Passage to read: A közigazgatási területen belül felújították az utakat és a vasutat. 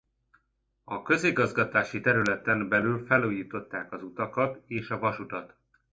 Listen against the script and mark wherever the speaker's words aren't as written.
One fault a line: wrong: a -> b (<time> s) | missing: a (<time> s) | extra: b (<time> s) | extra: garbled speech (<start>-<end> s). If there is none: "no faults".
no faults